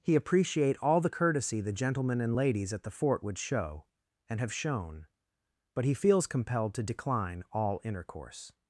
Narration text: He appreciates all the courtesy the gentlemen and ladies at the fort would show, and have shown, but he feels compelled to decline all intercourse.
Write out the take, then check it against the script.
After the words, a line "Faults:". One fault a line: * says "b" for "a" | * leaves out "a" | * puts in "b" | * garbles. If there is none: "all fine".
He appreciate all the courtesy the gentlemen and ladies at the fort would show, and have shown, but he feels compelled to decline all intercourse.
Faults:
* says "appreciate" for "appreciates"